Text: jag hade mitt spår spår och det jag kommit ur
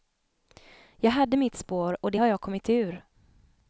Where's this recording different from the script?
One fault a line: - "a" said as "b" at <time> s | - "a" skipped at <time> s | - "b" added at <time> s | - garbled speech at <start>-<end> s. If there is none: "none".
- "spår" skipped at 2.0 s
- "har" added at 2.2 s